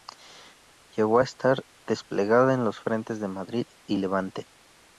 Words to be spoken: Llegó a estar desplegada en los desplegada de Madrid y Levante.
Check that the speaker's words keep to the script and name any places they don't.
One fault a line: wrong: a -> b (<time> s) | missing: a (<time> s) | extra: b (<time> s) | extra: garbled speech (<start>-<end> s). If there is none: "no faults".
wrong: desplegada -> frentes (2.8 s)